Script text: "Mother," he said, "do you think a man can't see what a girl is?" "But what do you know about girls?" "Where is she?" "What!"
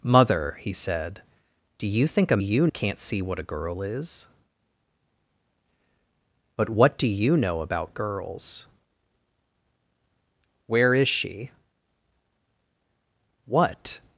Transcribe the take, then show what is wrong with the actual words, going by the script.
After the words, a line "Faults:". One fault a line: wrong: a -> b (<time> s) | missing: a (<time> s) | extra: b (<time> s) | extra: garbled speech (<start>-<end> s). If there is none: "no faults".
"Mother," he said, "do you think a you can't see what a girl is?" "But what do you know about girls?" "Where is she?" "What!"
Faults:
wrong: man -> you (2.4 s)